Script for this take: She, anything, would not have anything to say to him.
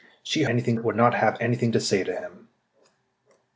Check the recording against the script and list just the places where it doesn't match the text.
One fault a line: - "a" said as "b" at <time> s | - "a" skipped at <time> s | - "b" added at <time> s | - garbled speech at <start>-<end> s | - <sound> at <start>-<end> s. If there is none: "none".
none